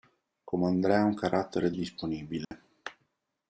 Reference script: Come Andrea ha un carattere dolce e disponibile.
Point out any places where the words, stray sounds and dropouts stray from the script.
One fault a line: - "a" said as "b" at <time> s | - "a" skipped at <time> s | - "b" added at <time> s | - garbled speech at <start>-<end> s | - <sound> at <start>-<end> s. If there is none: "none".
- "dolce" skipped at 1.7 s
- dropout at 2.4-2.5 s